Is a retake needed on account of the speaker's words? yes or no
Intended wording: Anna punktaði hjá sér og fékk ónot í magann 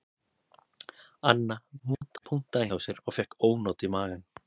yes